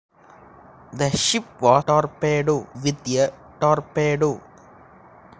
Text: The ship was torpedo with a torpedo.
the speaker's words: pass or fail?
pass